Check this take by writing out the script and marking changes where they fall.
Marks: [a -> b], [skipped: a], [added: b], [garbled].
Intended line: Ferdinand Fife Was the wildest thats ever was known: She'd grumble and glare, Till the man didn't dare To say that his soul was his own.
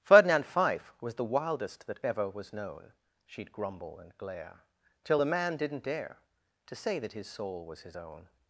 Ferdinand Fife Was the wildest [thats -> that] ever was known: She'd grumble and glare, Till the man didn't dare To say that his soul was his own.